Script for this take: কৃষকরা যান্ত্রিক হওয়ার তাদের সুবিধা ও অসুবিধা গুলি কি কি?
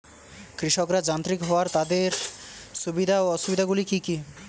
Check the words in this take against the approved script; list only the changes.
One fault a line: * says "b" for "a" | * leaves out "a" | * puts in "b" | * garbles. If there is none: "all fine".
all fine